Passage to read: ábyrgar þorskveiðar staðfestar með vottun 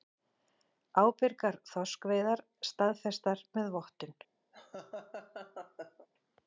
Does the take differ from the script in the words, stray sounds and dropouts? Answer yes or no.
yes